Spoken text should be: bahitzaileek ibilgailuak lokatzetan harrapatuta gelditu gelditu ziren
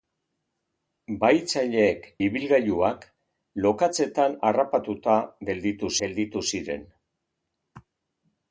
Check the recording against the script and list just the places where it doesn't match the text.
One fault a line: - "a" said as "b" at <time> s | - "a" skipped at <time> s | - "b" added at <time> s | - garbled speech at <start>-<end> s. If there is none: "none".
none